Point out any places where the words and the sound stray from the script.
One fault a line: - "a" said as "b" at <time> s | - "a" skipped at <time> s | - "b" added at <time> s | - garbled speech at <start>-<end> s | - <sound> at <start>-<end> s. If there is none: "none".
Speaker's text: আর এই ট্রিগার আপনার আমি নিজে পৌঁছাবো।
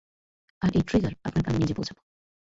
none